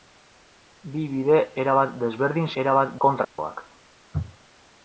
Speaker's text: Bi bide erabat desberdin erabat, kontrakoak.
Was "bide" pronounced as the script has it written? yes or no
yes